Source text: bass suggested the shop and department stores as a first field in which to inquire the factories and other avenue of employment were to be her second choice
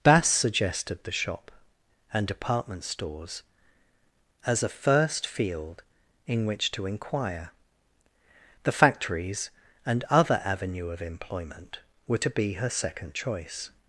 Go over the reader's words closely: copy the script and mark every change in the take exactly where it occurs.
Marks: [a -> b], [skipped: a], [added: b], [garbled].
bass suggested the shop and department stores as a first field in which to inquire the factories and other avenue of employment were to be her second choice